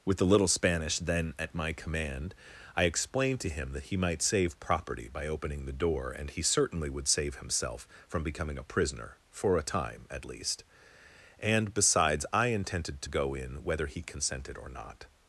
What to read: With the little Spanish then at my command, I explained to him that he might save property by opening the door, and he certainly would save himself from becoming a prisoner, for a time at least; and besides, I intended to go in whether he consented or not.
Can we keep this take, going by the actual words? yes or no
yes